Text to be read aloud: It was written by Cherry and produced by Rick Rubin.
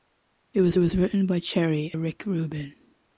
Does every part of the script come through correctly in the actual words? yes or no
no